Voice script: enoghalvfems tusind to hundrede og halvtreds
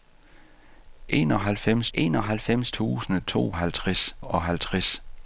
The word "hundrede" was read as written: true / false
false